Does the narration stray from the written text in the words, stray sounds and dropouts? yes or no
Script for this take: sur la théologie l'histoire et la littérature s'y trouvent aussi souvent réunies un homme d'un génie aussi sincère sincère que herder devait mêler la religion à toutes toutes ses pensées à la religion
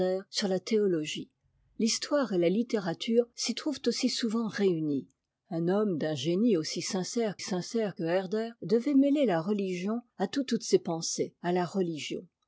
no